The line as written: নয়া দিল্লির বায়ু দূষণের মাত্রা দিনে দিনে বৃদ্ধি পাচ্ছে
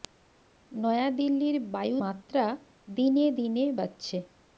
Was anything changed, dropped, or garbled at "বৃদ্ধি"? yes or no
yes